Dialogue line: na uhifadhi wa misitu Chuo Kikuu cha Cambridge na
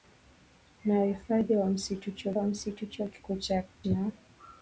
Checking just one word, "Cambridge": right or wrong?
wrong